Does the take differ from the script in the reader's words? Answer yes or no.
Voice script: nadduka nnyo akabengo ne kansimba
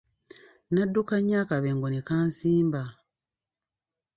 no